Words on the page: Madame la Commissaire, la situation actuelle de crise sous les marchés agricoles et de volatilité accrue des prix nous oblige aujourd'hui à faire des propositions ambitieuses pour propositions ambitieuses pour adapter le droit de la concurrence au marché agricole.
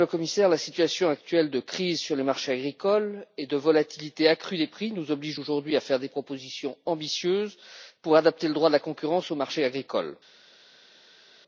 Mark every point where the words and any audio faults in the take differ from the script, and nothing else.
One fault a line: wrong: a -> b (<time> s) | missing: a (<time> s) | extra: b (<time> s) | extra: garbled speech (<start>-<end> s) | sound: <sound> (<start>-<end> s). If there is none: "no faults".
wrong: sous -> sur (2.0 s)
missing: propositions ambitieuses pour (8.1 s)